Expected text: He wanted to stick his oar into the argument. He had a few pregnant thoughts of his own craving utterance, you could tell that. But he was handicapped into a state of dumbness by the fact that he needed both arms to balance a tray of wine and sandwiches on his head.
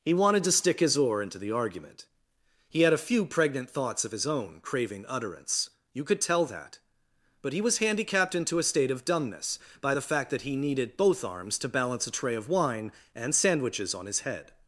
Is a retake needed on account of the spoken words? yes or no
no